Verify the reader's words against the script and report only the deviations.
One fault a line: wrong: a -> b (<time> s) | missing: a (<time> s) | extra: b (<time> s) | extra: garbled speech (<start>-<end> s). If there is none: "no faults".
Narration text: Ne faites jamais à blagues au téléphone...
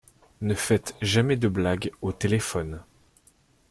wrong: à -> de (1.4 s)